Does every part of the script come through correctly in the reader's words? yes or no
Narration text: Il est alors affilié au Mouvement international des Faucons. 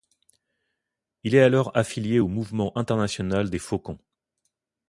yes